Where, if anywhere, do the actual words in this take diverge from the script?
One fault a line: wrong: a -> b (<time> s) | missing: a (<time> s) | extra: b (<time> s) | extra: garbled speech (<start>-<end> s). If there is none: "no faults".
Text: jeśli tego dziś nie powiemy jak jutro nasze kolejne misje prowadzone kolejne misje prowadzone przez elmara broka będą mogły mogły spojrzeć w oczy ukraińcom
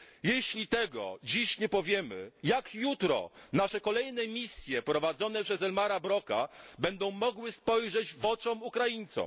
missing: kolejne misje prowadzone (5.4 s)
missing: mogły (7.5 s)